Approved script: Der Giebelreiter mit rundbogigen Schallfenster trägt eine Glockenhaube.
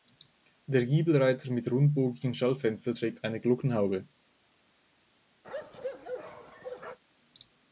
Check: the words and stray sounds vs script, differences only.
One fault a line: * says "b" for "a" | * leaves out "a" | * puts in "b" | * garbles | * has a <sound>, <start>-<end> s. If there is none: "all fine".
* has a bark, 5.4-7.0 s